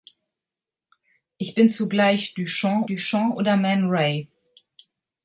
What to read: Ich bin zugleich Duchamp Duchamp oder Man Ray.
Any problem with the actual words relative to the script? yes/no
no